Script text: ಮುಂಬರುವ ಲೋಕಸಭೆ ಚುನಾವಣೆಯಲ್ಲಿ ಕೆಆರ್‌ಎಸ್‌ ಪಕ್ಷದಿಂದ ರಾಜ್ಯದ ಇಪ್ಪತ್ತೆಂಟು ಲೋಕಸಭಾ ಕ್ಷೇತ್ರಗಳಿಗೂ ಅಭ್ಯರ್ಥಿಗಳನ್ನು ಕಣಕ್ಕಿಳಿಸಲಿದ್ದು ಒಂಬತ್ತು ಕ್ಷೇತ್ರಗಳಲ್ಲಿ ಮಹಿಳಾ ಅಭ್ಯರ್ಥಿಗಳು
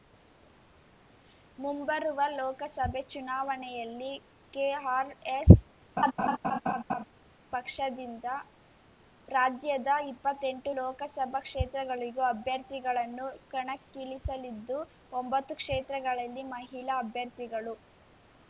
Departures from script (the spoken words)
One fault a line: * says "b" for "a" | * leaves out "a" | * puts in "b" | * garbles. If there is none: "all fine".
all fine